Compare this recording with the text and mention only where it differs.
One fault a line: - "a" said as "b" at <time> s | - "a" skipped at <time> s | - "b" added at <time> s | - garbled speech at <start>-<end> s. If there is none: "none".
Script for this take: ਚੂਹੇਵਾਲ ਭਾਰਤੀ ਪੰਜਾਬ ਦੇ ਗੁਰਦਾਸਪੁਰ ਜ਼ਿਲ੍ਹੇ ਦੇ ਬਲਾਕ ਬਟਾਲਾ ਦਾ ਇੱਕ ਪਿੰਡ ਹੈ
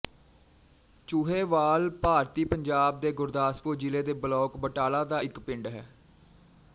none